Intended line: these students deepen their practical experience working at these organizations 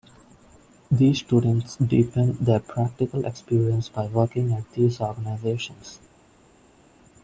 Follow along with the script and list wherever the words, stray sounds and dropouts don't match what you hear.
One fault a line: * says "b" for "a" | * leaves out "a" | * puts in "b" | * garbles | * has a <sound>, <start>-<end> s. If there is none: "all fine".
* puts in "by"